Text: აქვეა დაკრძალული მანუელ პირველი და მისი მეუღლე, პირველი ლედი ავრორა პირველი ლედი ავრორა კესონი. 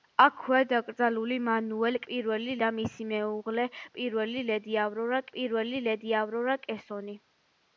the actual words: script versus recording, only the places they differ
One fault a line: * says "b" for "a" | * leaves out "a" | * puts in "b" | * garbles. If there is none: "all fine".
all fine